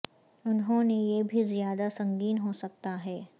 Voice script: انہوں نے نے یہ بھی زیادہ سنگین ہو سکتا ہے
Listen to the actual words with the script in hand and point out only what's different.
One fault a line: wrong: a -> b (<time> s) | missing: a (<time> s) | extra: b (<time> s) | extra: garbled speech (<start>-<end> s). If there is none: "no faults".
missing: نے (0.9 s)